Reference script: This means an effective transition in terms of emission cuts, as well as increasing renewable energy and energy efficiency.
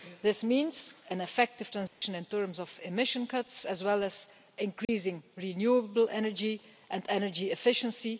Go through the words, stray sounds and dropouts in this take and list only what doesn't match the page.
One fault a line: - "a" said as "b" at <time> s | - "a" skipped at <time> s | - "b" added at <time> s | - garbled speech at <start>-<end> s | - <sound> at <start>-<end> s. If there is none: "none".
- dropout at 1.9-2.0 s
- dropout at 4.8-4.9 s